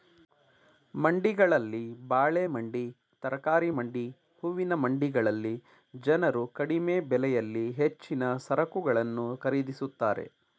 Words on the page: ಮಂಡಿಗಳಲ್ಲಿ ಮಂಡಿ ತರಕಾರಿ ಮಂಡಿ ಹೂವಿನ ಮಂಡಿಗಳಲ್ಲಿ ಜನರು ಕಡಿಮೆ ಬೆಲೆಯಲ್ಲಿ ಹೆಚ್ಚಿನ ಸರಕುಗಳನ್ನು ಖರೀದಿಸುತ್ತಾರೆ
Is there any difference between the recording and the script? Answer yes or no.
yes